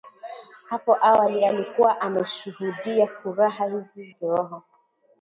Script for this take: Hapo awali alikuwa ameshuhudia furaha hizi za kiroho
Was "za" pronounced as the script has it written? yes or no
no